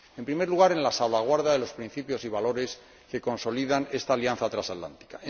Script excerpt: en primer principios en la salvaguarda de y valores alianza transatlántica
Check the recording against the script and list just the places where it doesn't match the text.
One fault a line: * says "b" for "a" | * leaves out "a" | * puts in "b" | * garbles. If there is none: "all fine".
* says "lugar" for "principios"
* puts in "los principios"
* puts in "que consolidan esta"